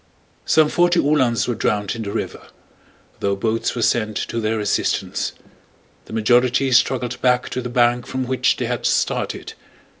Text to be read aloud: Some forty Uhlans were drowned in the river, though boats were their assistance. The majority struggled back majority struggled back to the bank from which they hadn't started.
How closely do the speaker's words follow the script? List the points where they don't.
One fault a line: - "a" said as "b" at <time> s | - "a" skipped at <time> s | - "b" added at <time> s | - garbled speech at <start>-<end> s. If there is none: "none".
- "sent to" added at 3.8 s
- "majority struggled back" skipped at 7.5 s
- "hadn't" said as "had" at 8.7 s